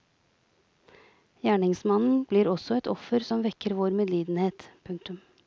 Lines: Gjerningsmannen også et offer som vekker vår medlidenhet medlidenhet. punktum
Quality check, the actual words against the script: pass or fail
fail